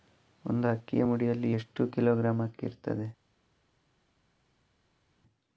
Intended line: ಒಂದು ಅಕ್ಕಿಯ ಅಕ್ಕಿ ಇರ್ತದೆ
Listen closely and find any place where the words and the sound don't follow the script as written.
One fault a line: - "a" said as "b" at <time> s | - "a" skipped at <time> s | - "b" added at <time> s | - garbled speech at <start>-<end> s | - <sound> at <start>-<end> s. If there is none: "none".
- "ಮುಡಿಯಲ್ಲಿ ಎಷ್ಟು ಕಿಲೋಗ್ರಾಂ" added at 1.0 s